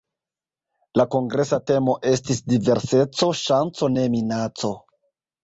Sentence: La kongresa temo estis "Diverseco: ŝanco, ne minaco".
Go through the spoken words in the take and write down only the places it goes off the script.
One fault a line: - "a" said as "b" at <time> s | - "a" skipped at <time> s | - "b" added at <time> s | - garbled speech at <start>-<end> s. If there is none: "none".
none